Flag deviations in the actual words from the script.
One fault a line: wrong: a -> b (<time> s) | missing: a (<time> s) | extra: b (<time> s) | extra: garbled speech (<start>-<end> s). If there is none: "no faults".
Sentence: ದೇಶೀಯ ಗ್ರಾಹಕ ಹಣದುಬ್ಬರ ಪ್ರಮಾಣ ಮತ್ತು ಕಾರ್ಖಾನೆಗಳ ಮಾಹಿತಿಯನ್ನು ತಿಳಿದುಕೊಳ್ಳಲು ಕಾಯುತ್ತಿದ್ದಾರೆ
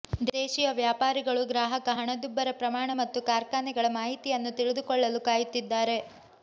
extra: ವ್ಯಾಪಾರಿಗಳು (0.8 s)